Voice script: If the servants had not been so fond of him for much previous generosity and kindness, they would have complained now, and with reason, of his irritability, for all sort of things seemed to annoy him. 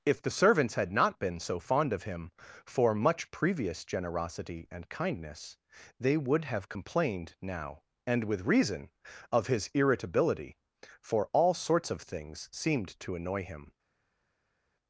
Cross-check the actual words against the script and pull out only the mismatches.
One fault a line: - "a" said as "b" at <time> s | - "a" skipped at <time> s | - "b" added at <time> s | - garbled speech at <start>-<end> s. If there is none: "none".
- "sort" said as "sorts" at 11.5 s